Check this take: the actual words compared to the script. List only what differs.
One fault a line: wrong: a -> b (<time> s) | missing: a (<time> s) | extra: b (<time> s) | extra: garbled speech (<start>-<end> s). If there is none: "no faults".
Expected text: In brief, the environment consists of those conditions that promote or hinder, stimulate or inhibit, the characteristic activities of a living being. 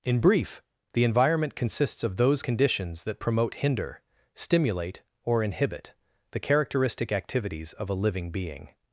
missing: or (3.5 s)